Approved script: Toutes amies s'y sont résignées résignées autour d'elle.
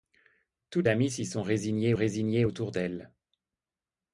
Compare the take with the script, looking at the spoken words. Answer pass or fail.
pass